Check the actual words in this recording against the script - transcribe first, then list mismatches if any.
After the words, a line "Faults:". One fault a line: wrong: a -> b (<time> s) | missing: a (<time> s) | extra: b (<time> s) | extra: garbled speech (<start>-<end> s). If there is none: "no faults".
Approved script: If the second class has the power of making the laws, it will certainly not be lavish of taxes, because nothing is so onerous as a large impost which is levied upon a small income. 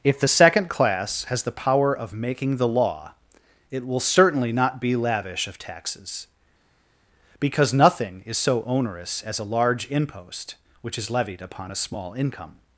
If the second class has the power of making the law, it will certainly not be lavish of taxes, because nothing is so onerous as a large impost which is levied upon a small income.
Faults:
wrong: laws -> law (2.7 s)